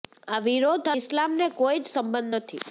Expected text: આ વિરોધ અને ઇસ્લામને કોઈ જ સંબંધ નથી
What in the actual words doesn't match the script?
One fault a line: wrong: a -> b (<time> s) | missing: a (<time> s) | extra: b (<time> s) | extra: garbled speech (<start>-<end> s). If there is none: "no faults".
missing: અને (0.9 s)